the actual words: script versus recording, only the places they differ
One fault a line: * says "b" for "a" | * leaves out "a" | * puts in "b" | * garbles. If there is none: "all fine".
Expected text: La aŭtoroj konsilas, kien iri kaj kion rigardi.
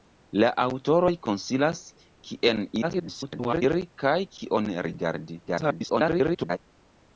* garbles
* garbles